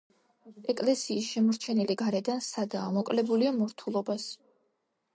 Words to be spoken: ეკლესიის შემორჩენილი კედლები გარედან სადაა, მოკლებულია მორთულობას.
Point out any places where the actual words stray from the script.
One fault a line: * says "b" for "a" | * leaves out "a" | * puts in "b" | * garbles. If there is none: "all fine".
* leaves out "კედლები"